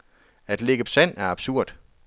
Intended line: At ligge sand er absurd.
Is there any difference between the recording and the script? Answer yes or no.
no